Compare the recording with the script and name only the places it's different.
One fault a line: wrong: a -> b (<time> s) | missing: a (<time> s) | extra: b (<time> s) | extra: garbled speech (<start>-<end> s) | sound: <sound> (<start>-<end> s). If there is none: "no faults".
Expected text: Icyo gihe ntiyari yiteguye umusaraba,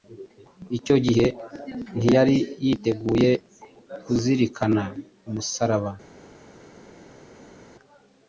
extra: kuzirikana (4.0 s)